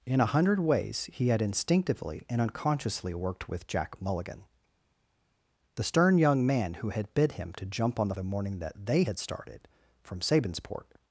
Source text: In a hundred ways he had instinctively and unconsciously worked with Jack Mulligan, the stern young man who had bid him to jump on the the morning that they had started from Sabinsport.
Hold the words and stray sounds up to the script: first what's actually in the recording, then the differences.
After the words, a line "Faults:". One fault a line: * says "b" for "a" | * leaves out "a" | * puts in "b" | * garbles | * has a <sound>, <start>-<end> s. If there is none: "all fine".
In a hundred ways he had instinctively and unconsciously worked with Jack Mulligan, the stern young man who had bid him to jump on the the morning that they had started from Sabinsport.
Faults:
all fine